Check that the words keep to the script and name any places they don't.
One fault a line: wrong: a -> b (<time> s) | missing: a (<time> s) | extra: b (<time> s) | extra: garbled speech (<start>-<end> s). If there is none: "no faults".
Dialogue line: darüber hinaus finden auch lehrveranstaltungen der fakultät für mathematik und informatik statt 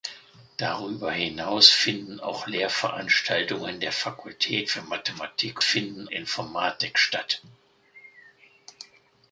wrong: und -> finden (5.6 s)